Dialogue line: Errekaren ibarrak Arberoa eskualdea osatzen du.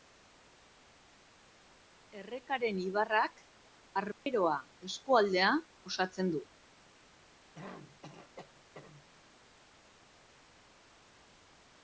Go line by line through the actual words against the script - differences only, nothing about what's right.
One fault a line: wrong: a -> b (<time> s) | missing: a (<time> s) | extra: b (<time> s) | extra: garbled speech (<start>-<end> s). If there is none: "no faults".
no faults